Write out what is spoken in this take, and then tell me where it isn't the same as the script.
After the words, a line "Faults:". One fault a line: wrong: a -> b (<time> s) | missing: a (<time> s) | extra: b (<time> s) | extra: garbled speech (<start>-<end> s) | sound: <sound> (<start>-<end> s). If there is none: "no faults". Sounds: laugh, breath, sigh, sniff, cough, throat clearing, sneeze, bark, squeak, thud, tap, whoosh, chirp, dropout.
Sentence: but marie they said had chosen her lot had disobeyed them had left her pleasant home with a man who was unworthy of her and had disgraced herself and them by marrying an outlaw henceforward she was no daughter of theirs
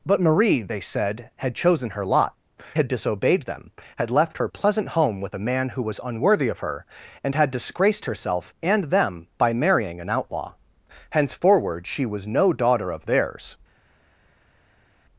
but marie they said had chosen her lot had disobeyed them had left her pleasant home with a man who was unworthy of her and had disgraced herself and them by marrying an outlaw henceforward she was no daughter of theirs
Faults:
no faults